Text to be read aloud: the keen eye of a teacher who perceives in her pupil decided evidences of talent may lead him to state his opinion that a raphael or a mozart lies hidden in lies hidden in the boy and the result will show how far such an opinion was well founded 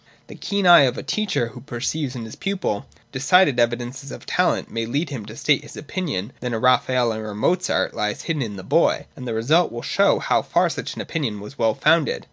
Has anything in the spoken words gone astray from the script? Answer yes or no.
yes